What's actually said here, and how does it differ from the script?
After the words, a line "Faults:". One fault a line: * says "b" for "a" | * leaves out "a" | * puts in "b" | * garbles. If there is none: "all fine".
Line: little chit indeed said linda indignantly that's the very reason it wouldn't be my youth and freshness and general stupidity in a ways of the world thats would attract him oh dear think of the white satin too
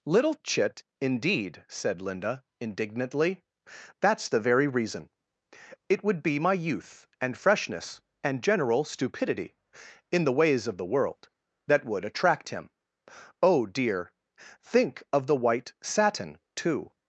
little chit indeed said linda indignantly that's the very reason it would be my youth and freshness and general stupidity in the ways of the world that would attract him oh dear think of the white satin too
Faults:
* says "would" for "wouldn't"
* says "the" for "a"
* says "that" for "thats"